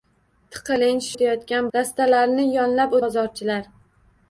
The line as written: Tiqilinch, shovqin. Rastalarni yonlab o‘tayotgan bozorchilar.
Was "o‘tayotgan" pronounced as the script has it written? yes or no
no